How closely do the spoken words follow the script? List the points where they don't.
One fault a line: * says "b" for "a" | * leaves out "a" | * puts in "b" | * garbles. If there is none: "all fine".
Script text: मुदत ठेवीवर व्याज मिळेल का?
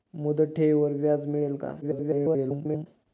* garbles